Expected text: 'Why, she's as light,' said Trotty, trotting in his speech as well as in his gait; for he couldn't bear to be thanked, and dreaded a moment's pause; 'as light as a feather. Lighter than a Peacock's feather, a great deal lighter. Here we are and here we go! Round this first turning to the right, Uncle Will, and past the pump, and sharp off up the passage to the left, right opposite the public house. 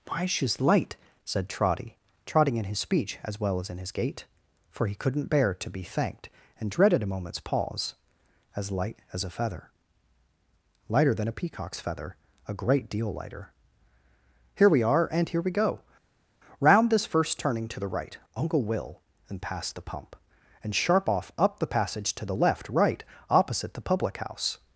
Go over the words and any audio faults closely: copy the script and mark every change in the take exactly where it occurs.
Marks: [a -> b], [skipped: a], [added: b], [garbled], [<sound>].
'Why, she's [skipped: as] light,' said Trotty, trotting in his speech as well as in his gait; for he couldn't bear to be thanked, and dreaded a moment's pause; 'as light as a feather. Lighter than a Peacock's feather, a great deal lighter. Here we are and here we go! Round this first turning to the right, Uncle Will, and past the pump, and sharp off up the passage to the left, right opposite the public house.